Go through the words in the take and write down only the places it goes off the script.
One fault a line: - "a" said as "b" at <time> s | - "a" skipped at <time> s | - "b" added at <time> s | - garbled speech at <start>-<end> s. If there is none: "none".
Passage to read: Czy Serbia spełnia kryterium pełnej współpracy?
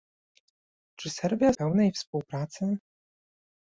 - "spełnia kryterium" skipped at 1.5 s